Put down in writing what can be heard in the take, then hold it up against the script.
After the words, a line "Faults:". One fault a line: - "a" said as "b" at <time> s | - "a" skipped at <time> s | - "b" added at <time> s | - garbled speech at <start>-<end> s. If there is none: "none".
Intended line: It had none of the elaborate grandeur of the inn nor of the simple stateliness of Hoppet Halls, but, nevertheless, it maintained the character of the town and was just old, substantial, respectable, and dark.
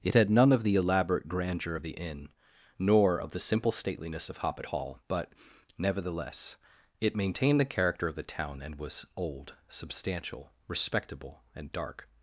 It had none of the elaborate grandeur of the inn nor of the simple stateliness of Hoppet Hall, but, nevertheless, it maintained the character of the town and was old, substantial, respectable, and dark.
Faults:
- "Halls" said as "Hall" at 4.6 s
- "just" skipped at 9.1 s